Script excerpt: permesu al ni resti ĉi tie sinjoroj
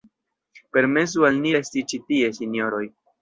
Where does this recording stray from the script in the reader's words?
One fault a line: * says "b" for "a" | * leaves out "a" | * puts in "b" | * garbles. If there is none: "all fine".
all fine